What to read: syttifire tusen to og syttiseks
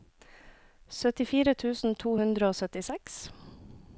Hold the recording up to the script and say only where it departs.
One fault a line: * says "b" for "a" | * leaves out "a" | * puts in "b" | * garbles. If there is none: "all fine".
* puts in "hundre"